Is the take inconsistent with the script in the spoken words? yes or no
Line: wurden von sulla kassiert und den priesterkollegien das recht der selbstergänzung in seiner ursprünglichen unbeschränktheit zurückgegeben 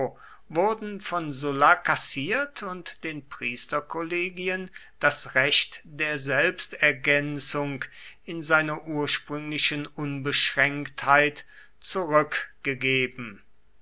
no